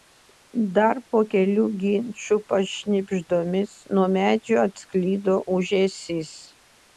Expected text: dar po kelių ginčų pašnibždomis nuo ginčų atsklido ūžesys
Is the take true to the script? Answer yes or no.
no